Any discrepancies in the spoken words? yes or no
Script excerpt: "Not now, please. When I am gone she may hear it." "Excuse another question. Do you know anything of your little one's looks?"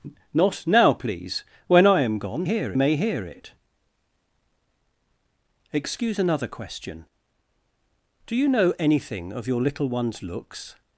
yes